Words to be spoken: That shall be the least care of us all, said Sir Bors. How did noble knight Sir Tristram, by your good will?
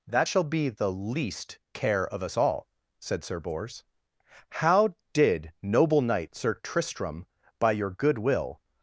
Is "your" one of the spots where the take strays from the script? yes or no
no